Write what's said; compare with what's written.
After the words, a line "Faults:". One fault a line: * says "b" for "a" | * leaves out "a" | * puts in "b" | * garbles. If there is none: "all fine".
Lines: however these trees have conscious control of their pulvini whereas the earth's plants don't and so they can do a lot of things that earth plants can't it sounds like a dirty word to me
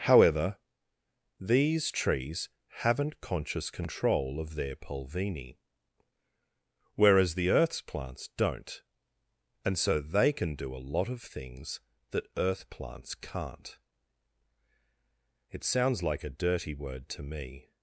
however these trees haven't conscious control of their pulvini whereas the earth's plants don't and so they can do a lot of things that earth plants can't it sounds like a dirty word to me
Faults:
* says "haven't" for "have"